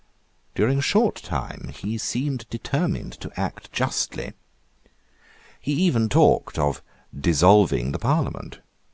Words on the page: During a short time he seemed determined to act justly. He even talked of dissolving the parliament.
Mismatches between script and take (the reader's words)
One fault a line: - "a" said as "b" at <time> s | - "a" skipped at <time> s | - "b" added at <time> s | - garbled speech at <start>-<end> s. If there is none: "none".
none